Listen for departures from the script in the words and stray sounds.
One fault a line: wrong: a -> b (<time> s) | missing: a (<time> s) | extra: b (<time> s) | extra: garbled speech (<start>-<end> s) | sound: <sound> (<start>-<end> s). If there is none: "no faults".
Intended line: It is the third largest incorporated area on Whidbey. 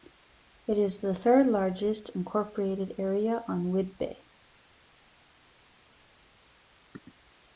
no faults